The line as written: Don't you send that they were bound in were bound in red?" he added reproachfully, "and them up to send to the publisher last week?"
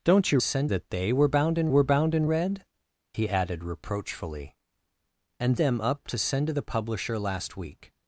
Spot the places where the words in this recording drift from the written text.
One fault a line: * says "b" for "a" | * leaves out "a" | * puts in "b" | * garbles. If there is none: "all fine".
all fine